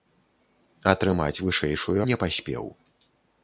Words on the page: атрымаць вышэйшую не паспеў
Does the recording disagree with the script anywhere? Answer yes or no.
no